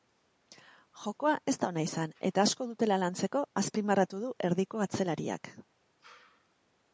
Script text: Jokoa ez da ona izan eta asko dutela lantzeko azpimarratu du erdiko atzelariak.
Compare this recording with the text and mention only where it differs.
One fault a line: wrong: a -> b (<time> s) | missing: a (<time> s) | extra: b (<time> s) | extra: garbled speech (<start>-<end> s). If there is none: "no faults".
no faults